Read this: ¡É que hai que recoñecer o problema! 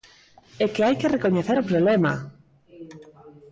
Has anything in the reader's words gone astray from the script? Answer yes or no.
no